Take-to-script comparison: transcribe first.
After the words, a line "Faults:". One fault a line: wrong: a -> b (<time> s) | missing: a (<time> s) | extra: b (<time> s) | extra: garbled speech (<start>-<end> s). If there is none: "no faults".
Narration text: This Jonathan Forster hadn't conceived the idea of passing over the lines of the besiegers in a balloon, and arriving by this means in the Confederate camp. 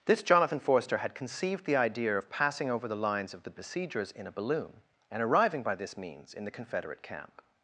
This Jonathan Forster had conceived the idea of passing over the lines of the besiegers in a balloon, and arriving by this means in the Confederate camp.
Faults:
wrong: hadn't -> had (1.0 s)